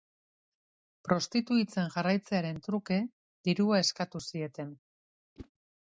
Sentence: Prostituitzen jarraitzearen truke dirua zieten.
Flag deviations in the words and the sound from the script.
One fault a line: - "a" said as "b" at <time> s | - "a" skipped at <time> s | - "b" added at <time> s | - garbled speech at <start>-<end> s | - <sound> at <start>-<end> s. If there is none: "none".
- "eskatu" added at 3.9 s
- whoosh at 5.4-5.5 s